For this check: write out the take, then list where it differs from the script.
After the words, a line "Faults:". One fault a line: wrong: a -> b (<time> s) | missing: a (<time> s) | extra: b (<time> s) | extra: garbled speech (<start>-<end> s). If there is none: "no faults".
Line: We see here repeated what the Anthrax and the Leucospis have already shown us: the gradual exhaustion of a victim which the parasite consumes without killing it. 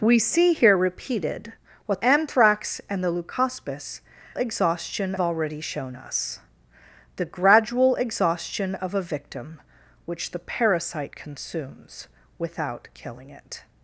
We see here repeated what Anthrax and the Leucospis exhaustion already shown us: the gradual exhaustion of a victim which the parasite consumes without killing it.
Faults:
missing: the (2.0 s)
wrong: have -> exhaustion (4.3 s)